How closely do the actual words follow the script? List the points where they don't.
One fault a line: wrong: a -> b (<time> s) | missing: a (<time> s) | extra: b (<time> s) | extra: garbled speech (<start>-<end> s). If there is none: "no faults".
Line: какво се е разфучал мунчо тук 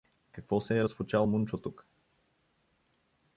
no faults